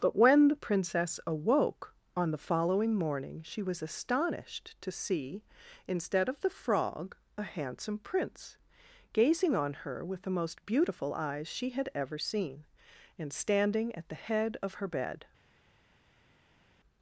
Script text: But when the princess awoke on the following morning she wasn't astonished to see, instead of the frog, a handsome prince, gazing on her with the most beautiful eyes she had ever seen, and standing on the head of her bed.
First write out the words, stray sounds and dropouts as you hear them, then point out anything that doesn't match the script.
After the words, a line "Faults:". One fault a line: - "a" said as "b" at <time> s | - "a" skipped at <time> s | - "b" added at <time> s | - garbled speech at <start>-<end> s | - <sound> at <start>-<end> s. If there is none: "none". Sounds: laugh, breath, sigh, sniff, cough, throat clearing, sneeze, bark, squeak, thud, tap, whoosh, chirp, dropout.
But when the princess awoke on the following morning she was astonished to see, instead of the frog, a handsome prince, gazing on her with the most beautiful eyes she had ever seen, and standing at the head of her bed.
Faults:
- "wasn't" said as "was" at 3.6 s
- "on" said as "at" at 13.9 s